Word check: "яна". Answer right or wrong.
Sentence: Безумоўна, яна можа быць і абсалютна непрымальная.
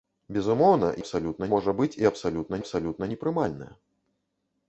wrong